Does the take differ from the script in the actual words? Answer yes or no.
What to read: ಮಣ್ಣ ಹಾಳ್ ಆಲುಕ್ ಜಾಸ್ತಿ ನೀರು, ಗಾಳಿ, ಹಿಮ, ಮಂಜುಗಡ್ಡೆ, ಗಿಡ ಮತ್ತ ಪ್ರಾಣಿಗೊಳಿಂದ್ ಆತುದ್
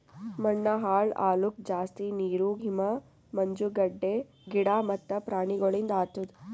yes